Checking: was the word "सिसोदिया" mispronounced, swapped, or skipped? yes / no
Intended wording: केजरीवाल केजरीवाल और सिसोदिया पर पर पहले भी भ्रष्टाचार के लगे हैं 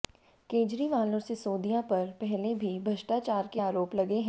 no